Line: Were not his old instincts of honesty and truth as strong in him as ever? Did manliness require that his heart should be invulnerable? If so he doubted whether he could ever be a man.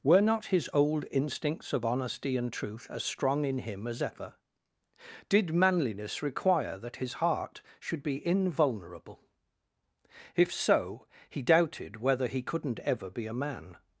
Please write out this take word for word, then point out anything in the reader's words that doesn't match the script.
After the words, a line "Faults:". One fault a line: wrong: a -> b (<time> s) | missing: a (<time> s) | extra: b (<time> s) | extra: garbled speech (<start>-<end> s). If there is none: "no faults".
Were not his old instincts of honesty and truth as strong in him as ever? Did manliness require that his heart should be invulnerable? If so he doubted whether he couldn't ever be a man.
Faults:
wrong: could -> couldn't (12.4 s)